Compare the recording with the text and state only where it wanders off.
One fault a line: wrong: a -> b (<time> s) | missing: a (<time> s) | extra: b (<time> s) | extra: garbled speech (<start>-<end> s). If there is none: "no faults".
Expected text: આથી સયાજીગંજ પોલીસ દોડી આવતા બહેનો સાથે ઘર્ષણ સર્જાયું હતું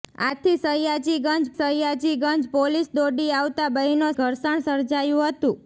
extra: સયાજીગંજ (1.5 s)
missing: સાથે (4.1 s)